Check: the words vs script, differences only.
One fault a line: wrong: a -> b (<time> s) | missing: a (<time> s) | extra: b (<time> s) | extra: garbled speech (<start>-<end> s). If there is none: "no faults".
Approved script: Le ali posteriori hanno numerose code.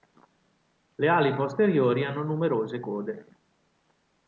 no faults